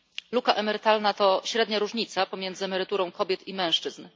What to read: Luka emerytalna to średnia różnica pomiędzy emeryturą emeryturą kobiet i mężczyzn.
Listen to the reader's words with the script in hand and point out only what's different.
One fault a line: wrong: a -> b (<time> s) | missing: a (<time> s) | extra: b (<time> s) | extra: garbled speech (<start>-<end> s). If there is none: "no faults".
missing: emeryturą (3.1 s)